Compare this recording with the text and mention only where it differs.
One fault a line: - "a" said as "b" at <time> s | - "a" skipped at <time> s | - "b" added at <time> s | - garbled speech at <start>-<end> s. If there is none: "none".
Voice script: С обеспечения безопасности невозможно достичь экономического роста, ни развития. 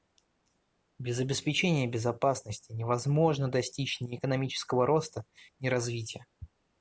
- "С" said as "Без" at 1.0 s
- "ни" added at 4.0 s